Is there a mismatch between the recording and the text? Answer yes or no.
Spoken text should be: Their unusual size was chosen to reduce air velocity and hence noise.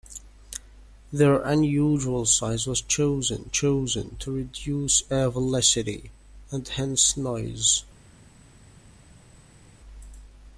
yes